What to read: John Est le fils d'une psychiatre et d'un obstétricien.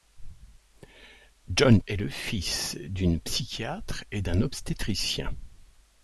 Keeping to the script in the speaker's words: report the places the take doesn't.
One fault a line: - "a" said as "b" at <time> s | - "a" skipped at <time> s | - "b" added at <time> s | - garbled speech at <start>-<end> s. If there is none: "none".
none